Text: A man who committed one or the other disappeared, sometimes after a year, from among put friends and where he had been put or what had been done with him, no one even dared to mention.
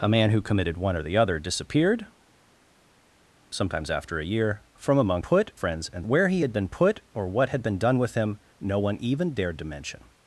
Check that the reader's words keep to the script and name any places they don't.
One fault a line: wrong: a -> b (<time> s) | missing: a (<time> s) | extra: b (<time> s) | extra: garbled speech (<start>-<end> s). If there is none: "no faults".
no faults